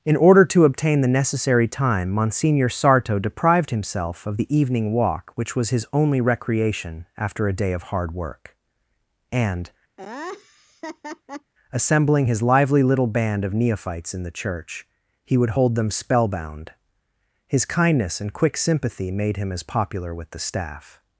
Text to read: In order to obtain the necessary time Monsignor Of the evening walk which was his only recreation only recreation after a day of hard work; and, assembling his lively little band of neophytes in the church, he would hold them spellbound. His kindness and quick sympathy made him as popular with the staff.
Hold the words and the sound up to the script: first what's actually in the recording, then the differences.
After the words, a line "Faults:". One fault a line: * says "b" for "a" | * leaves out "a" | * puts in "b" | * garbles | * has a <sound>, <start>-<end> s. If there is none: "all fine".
In order to obtain the necessary time Monsignor Sarto deprived himself of the evening walk which was his only recreation after a day of hard work; and, assembling his lively little band of neophytes in the church, he would hold them spellbound. His kindness and quick sympathy made him as popular with the staff.
Faults:
* puts in "Sarto deprived himself"
* leaves out "only recreation"
* has a laugh, 10.0-11.5 s